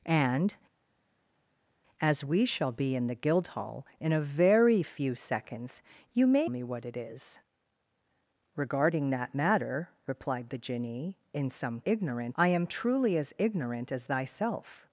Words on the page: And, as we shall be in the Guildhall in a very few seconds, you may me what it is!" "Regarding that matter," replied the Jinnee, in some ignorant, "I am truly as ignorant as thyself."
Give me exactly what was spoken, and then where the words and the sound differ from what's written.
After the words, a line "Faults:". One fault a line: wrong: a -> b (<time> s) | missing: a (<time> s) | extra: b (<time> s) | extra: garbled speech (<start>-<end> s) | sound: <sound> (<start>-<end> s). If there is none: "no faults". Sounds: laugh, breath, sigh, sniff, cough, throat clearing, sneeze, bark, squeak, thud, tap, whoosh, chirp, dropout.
And, as we shall be in the Guildhall in a very few seconds, you may me what it is!" "Regarding that matter," replied the Jinnee, in some ignorant, "I am truly as ignorant as thyself."
Faults:
no faults